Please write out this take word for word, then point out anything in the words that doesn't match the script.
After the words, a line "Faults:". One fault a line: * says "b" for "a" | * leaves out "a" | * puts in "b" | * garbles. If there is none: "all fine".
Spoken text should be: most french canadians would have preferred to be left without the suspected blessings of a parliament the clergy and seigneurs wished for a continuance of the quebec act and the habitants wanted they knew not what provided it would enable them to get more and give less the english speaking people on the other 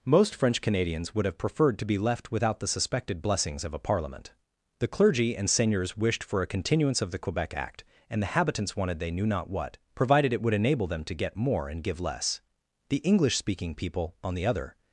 most french canadians would have preferred to be left without the suspected blessings of a parliament the clergy and seigneurs wished for a continuance of the quebec act and the habitants wanted they knew not what provided it would enable them to get more and give less the english speaking people on the other
Faults:
all fine